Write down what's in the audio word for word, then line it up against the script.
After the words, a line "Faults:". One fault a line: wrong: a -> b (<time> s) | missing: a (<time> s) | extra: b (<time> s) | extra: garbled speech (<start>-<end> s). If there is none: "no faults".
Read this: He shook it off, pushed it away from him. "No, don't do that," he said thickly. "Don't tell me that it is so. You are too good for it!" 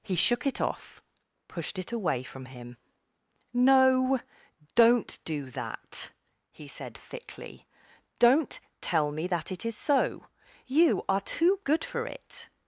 He shook it off, pushed it away from him. "No, don't do that," he said thickly. "Don't tell me that it is so. You are too good for it!"
Faults:
no faults